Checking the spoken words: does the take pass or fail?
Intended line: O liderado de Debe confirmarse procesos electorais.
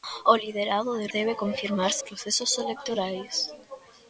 pass